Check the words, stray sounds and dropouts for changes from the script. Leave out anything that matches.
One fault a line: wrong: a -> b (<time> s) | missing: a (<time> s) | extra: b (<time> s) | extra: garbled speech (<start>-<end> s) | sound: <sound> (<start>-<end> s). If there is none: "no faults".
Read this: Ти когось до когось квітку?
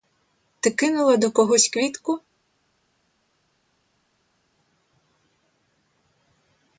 wrong: когось -> кинула (0.7 s)